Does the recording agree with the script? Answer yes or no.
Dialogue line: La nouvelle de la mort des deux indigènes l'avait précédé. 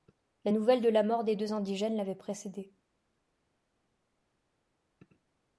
yes